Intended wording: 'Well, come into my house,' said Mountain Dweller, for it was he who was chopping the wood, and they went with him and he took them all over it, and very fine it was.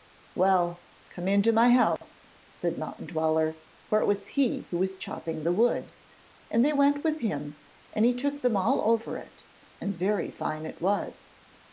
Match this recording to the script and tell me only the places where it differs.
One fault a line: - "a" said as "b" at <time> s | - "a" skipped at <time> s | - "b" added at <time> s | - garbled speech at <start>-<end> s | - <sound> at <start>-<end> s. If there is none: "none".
- dropout at 2.0-2.0 s